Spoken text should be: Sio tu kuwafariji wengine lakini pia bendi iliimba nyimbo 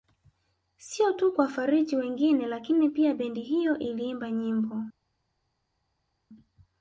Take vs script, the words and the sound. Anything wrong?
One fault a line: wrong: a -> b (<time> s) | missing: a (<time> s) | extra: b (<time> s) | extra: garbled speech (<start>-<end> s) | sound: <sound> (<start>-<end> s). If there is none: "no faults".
extra: hiyo (3.4 s)